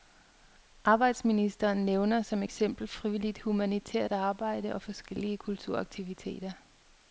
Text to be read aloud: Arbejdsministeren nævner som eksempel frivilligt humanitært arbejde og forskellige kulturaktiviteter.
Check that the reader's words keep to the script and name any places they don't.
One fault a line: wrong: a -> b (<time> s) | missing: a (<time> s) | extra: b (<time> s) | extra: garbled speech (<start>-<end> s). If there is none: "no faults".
no faults